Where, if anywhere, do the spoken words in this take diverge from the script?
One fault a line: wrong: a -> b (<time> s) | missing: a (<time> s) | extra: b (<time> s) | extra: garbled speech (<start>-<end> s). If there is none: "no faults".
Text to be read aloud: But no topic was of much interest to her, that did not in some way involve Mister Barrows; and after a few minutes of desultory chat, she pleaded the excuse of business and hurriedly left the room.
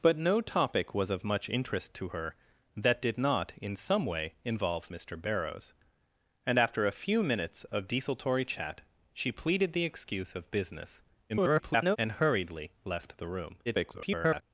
extra: garbled speech (11.3-12.0 s)
extra: garbled speech (13.7-14.4 s)